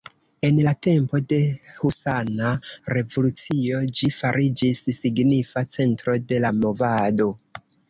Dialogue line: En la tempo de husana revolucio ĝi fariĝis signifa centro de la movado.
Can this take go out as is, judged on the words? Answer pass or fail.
pass